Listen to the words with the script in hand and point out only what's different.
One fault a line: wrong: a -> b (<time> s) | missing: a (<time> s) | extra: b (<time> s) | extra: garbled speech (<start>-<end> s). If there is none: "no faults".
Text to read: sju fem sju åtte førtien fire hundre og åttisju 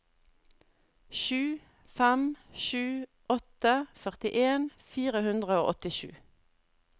no faults